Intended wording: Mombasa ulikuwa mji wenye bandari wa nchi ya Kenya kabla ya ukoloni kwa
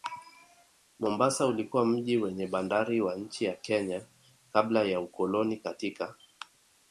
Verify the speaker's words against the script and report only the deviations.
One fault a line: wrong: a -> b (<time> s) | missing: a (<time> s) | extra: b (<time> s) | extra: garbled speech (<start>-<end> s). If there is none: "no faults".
wrong: kwa -> katika (5.6 s)